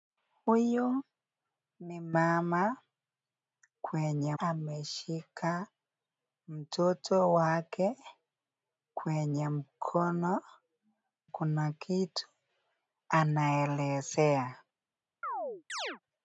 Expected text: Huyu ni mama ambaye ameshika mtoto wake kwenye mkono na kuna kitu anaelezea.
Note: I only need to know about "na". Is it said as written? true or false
false